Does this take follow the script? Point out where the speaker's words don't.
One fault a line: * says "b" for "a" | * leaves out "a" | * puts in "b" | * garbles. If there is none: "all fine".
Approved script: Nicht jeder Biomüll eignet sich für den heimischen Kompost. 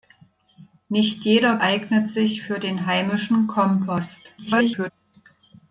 * leaves out "Biomüll"
* garbles